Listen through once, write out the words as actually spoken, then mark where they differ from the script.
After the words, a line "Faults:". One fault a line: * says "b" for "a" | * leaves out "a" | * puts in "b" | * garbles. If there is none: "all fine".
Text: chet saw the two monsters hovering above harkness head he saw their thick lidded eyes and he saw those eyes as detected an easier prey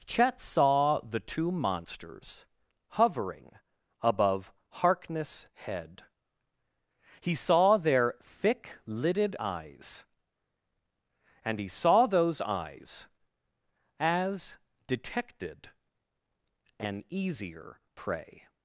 chet saw the two monsters hovering above harkness head he saw their thick lidded eyes and he saw those eyes as detected an easier prey
Faults:
all fine